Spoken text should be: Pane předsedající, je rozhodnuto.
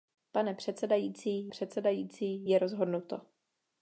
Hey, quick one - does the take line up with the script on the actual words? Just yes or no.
no